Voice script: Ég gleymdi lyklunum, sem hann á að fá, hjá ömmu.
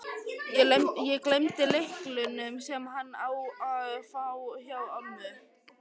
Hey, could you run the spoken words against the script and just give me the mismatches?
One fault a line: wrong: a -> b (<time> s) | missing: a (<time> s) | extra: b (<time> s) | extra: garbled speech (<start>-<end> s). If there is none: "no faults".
no faults